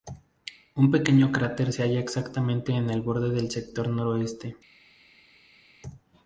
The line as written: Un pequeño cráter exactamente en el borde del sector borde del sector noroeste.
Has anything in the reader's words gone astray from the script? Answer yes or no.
yes